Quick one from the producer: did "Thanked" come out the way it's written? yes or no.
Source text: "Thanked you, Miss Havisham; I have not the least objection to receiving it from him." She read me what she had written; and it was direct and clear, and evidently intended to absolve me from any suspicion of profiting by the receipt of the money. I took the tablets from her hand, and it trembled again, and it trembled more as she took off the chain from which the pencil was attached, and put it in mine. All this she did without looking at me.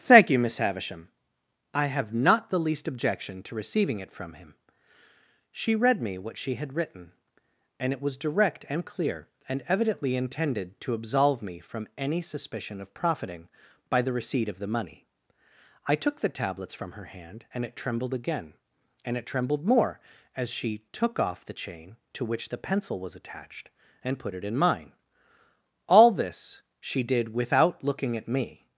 no